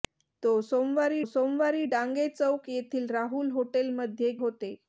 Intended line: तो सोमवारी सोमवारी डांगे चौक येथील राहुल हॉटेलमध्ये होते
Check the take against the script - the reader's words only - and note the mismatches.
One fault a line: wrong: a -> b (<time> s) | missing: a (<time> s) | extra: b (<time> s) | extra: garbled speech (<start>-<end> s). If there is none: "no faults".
no faults